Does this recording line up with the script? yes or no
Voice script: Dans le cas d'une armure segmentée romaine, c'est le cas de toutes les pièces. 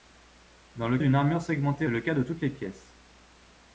no